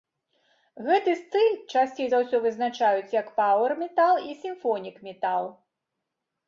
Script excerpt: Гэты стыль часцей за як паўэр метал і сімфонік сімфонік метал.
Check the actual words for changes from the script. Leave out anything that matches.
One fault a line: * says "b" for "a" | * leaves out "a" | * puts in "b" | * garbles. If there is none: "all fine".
* puts in "ўсё вызначаюць"
* leaves out "сімфонік"